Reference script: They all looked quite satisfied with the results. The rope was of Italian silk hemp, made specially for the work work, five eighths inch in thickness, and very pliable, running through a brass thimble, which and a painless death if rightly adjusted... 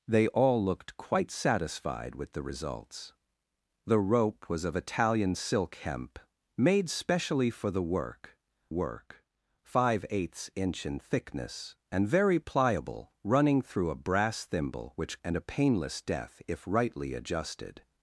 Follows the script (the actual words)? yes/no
yes